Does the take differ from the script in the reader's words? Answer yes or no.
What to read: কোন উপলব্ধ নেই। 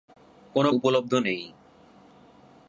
no